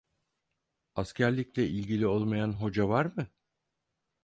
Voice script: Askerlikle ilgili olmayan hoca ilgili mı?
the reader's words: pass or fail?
fail